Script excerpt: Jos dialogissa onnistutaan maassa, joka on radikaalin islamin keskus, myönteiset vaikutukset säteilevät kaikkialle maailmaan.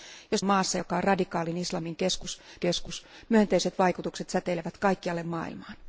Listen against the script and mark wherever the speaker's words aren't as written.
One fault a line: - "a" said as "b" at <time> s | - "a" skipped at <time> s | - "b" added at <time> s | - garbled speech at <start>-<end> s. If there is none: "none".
- "dialogissa onnistutaan" skipped at 0.5 s
- "keskus" added at 2.6 s